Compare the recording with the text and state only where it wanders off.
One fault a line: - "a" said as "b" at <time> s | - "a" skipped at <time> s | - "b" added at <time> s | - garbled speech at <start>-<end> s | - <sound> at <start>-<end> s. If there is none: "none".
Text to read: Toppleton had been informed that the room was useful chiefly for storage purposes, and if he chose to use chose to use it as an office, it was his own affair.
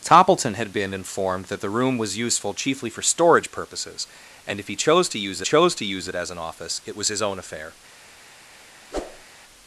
- whoosh at 8.9-9.3 s